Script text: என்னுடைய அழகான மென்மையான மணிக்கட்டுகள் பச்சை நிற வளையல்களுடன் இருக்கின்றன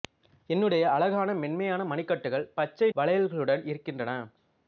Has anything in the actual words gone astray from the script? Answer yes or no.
yes